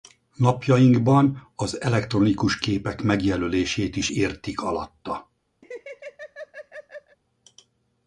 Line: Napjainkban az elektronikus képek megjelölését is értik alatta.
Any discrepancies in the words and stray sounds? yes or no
yes